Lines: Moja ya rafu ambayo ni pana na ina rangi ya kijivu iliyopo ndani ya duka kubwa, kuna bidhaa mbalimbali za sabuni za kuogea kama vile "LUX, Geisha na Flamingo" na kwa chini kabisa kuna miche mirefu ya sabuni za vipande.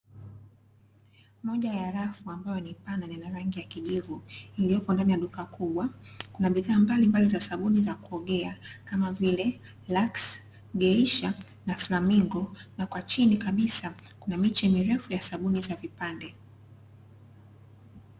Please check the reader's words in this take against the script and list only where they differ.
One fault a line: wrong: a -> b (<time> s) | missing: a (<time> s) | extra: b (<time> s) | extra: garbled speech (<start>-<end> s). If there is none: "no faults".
no faults